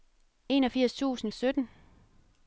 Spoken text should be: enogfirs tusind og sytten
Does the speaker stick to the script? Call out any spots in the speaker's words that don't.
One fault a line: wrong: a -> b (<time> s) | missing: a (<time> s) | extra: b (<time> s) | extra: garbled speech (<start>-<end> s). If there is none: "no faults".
no faults